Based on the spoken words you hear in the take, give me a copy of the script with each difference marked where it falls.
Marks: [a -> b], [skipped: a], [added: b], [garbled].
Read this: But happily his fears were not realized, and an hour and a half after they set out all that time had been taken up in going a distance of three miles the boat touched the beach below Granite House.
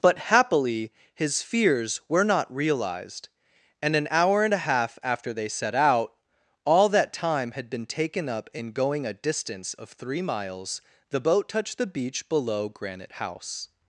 But happily his fears were not realized, and an hour and a half after they set out all that time had been taken up in going a distance of three miles the boat touched the beach below Granite House.